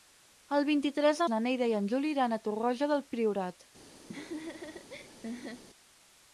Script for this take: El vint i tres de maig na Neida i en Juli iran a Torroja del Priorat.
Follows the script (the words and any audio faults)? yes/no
no